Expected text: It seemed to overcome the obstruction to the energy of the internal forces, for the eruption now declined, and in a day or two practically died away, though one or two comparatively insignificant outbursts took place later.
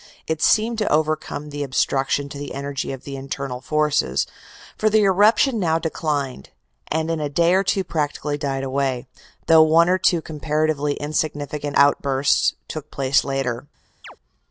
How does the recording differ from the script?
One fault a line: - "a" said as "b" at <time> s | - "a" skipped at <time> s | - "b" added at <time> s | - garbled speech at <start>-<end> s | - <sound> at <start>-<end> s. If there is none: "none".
- chirp at 14.0-14.2 s